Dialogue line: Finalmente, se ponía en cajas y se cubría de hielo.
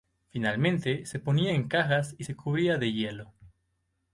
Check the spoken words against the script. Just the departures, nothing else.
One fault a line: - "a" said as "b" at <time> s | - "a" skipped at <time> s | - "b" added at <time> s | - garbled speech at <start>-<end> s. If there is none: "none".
none